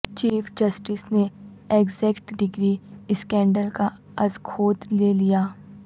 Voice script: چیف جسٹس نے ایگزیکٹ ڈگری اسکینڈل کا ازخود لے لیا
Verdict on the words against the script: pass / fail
pass